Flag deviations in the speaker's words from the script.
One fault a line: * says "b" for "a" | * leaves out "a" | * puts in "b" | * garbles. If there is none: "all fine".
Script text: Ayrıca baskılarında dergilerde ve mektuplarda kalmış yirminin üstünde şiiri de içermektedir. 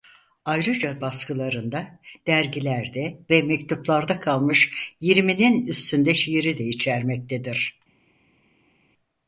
all fine